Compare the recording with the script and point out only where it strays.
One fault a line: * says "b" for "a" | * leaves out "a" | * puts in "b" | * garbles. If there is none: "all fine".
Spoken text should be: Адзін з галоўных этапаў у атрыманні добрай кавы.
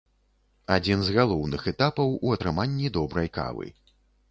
all fine